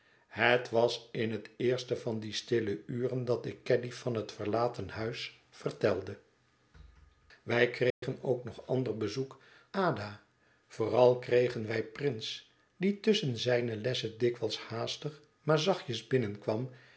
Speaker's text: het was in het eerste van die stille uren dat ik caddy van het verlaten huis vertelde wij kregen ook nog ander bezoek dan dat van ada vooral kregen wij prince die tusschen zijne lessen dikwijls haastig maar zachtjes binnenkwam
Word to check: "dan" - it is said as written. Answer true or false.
false